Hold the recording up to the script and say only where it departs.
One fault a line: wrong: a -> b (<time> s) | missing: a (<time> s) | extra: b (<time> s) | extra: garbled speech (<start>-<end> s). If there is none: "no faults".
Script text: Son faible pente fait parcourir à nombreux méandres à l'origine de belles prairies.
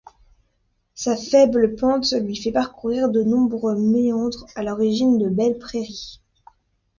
wrong: Son -> Sa (0.9 s)
extra: lui (2.1 s)
wrong: à -> de (3.1 s)